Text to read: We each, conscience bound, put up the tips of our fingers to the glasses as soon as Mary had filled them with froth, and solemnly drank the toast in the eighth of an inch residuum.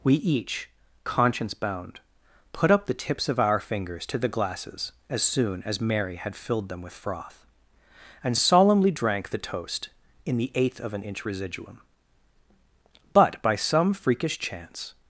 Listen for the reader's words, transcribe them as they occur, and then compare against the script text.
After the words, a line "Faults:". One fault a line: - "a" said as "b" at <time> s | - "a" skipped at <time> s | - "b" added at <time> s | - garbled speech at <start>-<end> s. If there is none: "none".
We each, conscience bound, put up the tips of our fingers to the glasses as soon as Mary had filled them with froth, and solemnly drank the toast in the eighth of an inch residuum. But by some freakish chance
Faults:
- "But by some freakish chance" added at 13.1 s